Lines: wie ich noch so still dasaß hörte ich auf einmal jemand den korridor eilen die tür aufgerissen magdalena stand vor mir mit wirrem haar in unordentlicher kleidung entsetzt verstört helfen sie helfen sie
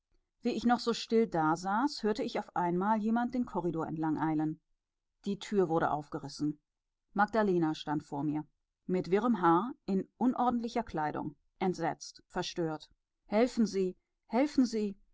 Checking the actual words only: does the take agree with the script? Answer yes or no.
no